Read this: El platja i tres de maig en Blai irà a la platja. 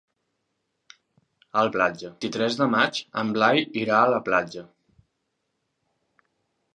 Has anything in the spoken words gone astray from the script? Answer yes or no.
no